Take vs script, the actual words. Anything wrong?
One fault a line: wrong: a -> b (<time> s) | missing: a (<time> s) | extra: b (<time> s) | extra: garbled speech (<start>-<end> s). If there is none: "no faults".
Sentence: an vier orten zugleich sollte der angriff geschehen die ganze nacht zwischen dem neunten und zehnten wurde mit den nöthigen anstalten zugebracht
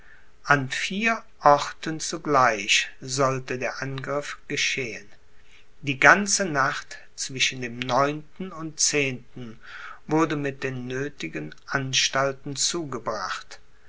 no faults